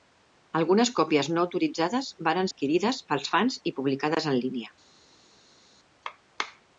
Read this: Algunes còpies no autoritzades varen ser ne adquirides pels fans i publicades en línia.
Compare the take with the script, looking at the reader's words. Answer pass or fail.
fail